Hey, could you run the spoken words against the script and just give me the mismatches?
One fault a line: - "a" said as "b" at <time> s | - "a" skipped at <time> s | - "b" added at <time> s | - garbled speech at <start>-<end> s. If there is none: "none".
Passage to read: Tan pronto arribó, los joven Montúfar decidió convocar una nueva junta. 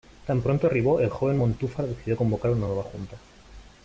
- "los" said as "el" at 1.0 s